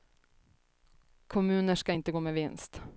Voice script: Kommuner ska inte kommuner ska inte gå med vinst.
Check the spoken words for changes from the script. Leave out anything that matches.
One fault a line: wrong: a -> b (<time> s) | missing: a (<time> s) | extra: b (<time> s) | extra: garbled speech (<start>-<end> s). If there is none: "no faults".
missing: kommuner ska inte (2.1 s)